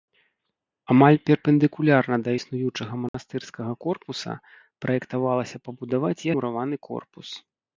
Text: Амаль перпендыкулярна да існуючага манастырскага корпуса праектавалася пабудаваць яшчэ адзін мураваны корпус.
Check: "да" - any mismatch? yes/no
no